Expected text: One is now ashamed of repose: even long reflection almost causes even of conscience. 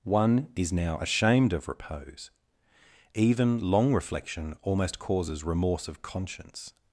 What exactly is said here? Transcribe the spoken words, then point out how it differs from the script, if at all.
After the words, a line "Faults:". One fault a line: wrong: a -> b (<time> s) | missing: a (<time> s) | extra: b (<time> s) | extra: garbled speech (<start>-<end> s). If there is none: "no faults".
One is now ashamed of repose: even long reflection almost causes remorse of conscience.
Faults:
wrong: even -> remorse (5.4 s)